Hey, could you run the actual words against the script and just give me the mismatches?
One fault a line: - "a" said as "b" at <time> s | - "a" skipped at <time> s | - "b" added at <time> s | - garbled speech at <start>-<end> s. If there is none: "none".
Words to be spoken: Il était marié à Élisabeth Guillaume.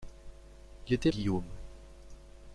- "marié à Élisabeth" skipped at 1.1 s